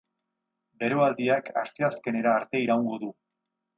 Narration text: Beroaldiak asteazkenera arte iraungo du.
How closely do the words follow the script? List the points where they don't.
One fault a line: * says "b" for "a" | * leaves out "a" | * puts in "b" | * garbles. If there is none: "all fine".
all fine